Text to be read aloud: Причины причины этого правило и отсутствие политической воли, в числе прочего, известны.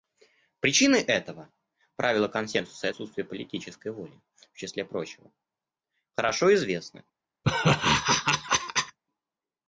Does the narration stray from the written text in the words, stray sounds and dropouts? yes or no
yes